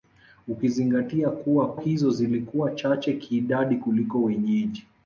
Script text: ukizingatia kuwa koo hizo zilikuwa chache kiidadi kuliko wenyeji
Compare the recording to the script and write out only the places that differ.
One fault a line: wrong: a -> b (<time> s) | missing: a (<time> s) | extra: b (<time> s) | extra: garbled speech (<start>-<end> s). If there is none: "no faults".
missing: koo (1.7 s)